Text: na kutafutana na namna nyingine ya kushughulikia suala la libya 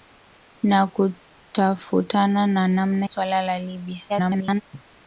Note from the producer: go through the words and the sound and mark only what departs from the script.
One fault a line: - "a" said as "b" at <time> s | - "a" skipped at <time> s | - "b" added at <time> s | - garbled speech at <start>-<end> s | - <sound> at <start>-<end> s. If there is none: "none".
- "nyingine ya kushughulikia" skipped at 3.1 s
- garbled speech at 4.1-4.6 s
- cough at 4.7-4.8 s